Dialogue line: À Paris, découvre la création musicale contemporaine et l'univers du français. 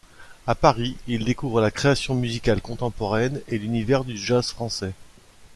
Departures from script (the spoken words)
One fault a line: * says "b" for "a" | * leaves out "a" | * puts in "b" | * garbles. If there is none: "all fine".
* puts in "il"
* puts in "jazz"